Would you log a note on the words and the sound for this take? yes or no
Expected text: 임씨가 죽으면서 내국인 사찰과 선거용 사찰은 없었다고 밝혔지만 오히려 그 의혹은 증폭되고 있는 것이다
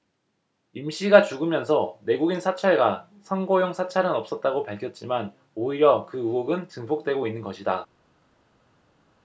no